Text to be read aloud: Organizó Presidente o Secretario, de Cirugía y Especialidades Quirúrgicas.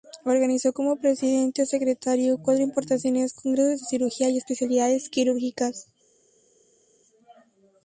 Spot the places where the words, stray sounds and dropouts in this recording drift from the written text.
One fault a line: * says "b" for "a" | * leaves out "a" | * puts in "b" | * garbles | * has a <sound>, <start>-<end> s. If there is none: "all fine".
* puts in "como"
* puts in "cuatro importantes Congresos"